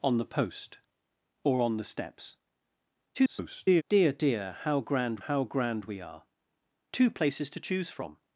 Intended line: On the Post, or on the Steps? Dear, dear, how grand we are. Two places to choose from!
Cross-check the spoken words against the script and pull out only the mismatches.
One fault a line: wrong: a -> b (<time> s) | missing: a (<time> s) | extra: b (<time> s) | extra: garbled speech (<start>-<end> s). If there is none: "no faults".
extra: garbled speech (3.1-3.8 s)
extra: how grand (5.2 s)